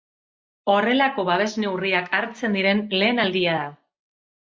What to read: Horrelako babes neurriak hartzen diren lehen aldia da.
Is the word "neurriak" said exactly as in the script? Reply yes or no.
yes